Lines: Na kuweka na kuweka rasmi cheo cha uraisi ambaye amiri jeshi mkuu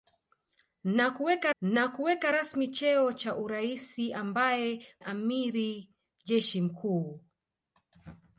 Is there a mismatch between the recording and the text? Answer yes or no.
no